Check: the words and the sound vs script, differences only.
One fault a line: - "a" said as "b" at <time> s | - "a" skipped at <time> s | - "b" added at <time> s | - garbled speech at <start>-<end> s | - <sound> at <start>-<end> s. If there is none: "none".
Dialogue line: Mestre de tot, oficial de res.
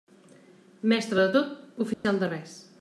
- dropout at 1.9-2.0 s